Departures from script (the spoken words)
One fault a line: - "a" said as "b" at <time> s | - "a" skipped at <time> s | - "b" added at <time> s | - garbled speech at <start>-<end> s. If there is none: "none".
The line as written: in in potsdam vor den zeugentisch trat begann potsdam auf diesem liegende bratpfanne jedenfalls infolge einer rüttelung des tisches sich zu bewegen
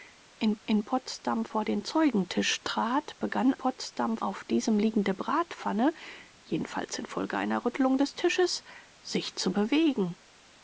none